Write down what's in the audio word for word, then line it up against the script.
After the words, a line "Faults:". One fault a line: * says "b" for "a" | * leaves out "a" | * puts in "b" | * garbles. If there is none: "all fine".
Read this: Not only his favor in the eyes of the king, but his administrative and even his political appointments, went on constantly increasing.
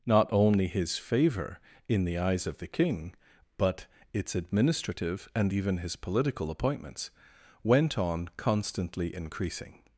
Not only his favor in the eyes of the king, but its administrative and even his political appointments, went on constantly increasing.
Faults:
* says "its" for "his"